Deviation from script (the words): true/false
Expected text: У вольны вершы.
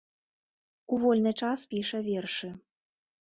true